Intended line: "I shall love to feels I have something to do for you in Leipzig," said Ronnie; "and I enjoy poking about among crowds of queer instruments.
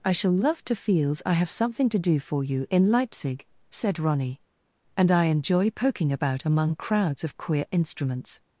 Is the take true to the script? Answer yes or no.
yes